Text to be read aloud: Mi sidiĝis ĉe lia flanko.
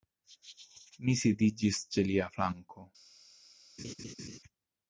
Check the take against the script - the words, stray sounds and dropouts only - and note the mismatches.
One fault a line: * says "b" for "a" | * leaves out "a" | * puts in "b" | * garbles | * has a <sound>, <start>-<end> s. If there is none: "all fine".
* has a laugh, 3.8-4.4 s